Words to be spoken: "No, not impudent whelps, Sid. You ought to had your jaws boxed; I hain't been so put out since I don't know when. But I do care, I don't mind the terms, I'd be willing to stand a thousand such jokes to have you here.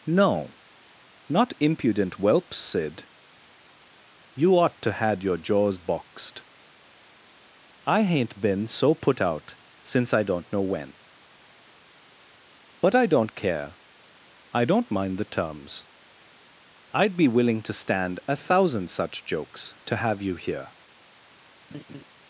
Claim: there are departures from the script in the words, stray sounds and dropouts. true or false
true